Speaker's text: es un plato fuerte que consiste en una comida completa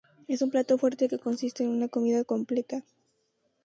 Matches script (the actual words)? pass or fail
pass